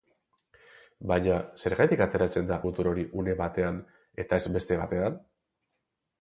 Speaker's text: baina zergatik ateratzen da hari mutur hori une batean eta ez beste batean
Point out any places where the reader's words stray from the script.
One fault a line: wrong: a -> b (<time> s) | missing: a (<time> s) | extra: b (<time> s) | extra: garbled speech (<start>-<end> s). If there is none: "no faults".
missing: hari (2.6 s)